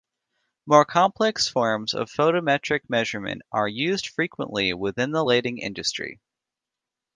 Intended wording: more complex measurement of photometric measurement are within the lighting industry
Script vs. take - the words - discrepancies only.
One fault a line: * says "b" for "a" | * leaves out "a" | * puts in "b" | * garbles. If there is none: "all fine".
* says "forms" for "measurement"
* puts in "used frequently"